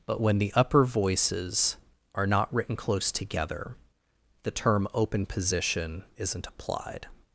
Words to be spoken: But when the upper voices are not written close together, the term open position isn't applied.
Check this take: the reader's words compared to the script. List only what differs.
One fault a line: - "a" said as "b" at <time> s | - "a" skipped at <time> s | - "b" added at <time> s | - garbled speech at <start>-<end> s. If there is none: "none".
none